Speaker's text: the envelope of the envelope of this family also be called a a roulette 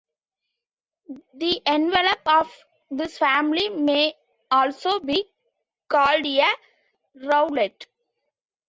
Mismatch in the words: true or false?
true